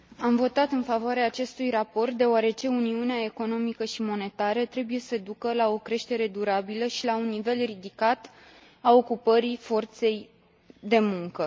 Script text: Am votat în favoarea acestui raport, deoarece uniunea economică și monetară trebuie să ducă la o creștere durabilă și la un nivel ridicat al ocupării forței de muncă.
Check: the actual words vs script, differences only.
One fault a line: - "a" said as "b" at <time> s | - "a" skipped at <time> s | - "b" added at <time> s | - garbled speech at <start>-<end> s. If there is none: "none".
none